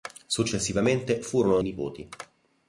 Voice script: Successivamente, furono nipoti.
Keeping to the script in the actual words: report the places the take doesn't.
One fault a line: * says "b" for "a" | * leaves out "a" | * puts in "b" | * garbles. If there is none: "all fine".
all fine